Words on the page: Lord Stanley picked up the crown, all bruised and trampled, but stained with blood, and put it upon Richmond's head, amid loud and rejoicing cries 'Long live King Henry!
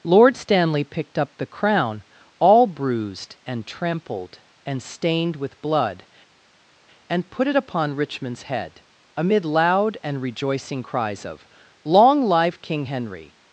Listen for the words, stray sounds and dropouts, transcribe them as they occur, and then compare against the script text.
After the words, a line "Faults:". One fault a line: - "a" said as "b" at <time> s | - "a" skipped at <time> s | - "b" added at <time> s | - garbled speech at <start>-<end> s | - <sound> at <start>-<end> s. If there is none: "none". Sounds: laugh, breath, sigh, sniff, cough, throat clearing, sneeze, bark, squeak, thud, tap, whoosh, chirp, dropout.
Lord Stanley picked up the crown, all bruised and trampled, and stained with blood, and put it upon Richmond's head, amid loud and rejoicing cries of 'Long live King Henry!
Faults:
- "but" said as "and" at 4.7 s
- "of" added at 11.3 s